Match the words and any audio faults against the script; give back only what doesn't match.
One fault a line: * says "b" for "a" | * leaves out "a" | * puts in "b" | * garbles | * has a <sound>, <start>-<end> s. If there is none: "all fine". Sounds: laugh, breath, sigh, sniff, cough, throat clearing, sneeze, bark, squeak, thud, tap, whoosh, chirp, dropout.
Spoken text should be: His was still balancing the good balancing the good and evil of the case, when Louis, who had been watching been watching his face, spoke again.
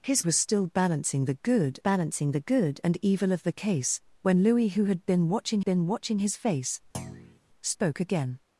* has a thud, 6.9-7.4 s